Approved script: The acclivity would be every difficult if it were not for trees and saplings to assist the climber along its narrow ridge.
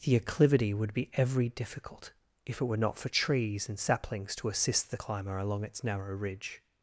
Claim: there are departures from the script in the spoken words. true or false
false